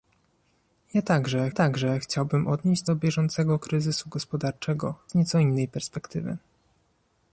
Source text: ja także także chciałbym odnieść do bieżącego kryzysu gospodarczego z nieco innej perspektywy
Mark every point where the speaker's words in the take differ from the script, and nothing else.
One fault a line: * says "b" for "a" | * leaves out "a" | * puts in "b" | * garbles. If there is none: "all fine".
all fine